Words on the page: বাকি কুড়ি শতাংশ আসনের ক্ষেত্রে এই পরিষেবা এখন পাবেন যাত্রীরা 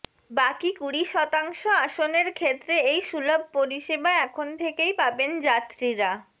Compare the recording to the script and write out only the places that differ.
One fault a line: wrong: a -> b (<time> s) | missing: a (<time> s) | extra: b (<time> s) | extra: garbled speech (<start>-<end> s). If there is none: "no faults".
extra: সুলভ (3.1 s)
extra: থেকেই (4.6 s)